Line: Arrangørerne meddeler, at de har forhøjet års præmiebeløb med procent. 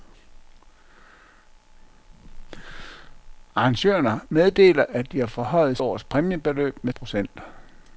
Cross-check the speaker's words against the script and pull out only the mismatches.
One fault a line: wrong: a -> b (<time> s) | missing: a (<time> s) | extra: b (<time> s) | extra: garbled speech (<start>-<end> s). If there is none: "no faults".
no faults